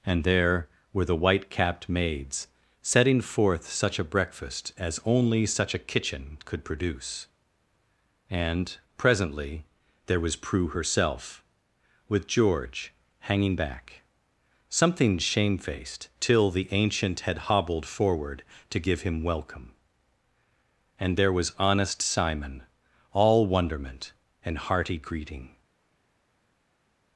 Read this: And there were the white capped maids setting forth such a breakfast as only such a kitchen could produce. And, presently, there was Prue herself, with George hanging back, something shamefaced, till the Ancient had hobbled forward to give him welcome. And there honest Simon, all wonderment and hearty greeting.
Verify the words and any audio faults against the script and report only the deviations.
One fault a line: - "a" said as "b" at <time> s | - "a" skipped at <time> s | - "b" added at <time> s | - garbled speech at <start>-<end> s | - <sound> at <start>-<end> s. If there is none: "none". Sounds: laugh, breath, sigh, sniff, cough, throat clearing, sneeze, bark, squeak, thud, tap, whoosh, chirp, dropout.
- "was" added at 21.3 s